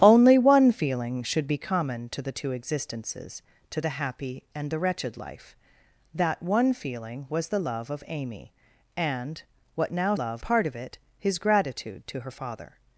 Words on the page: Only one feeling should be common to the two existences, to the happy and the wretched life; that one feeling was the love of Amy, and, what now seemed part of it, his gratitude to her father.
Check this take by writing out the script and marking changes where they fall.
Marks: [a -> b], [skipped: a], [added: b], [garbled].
Only one feeling should be common to the two existences, to the happy and the wretched life; that one feeling was the love of Amy, and, what now [seemed -> love] part of it, his gratitude to her father.